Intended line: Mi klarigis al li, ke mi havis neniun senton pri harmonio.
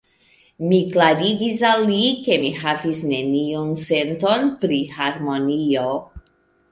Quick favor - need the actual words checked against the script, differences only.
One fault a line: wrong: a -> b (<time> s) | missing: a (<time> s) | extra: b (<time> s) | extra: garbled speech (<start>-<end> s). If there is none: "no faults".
no faults